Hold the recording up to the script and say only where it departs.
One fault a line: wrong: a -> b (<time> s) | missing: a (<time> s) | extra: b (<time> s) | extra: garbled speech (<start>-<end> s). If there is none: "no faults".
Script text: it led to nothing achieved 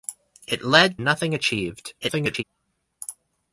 missing: to (1.0 s)
extra: garbled speech (2.0-2.4 s)